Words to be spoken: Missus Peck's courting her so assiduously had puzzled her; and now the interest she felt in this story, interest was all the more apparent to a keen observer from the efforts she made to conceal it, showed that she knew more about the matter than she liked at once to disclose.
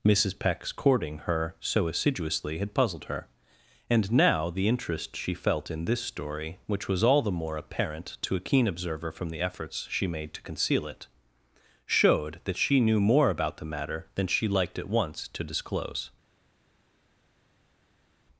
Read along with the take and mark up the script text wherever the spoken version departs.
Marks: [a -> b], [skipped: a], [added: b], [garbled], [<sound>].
Missus Peck's courting her so assiduously had puzzled her; and now the interest she felt in this story, [interest -> which] was all the more apparent to a keen observer from the efforts she made to conceal it, showed that she knew more about the matter than she liked at once to disclose.